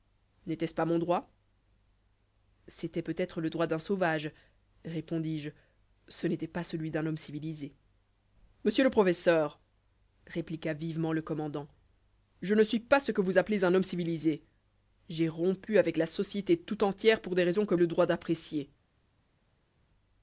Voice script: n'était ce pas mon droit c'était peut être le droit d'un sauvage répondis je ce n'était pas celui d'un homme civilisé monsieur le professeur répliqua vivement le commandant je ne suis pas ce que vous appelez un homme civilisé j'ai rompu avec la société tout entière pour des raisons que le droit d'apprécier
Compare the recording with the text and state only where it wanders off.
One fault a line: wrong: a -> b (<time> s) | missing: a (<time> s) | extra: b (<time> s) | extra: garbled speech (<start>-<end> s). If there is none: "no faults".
no faults